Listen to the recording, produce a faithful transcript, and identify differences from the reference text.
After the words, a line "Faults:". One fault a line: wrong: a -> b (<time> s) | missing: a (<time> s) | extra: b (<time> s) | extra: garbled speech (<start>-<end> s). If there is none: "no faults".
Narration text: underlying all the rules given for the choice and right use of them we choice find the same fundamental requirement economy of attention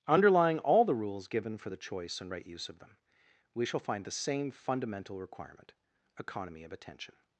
underlying all the rules given for the choice and right use of them we shall find the same fundamental requirement economy of attention
Faults:
wrong: choice -> shall (3.6 s)